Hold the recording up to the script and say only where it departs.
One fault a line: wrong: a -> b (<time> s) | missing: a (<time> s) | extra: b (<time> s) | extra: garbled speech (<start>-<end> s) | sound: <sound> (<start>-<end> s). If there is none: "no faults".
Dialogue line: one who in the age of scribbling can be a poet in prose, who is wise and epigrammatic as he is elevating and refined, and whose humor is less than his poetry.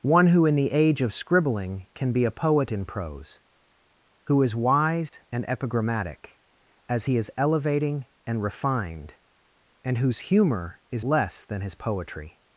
sound: dropout (5.1-5.1 s)